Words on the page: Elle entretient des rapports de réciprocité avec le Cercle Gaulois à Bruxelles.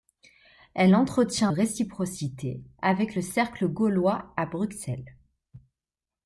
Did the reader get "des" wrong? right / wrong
wrong